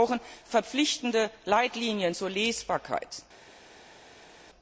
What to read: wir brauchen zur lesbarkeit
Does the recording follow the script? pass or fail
fail